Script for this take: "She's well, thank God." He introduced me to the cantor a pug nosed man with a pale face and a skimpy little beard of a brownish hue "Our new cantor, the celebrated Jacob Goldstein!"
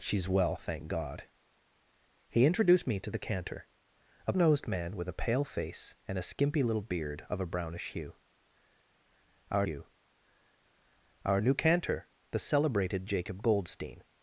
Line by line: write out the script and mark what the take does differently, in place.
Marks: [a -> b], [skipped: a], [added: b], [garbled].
"She's well, thank God." He introduced me to the cantor a [skipped: pug] nosed man with a pale face and a skimpy little beard of a brownish hue "Our [added: hue Our] new cantor, the celebrated Jacob Goldstein!"